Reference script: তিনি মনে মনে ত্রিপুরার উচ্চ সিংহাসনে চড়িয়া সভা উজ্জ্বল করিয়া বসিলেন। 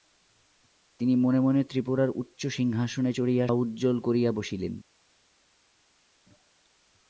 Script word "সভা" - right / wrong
wrong